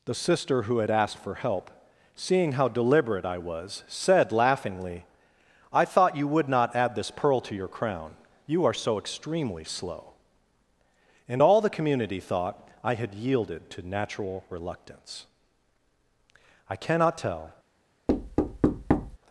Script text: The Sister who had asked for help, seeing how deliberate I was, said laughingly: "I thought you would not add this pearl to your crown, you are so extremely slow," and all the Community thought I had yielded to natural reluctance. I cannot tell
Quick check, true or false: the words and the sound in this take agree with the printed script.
false